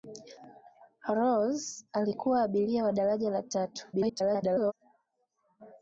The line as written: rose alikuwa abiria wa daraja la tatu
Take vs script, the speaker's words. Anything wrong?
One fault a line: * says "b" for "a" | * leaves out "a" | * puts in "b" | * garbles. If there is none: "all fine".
* garbles